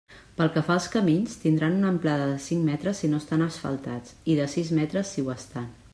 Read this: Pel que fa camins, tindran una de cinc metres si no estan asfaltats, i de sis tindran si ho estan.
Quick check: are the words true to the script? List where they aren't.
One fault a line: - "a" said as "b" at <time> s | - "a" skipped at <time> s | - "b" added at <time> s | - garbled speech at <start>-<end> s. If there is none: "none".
- "als" added at 0.8 s
- "amplada" added at 1.9 s
- "tindran" said as "metres" at 4.8 s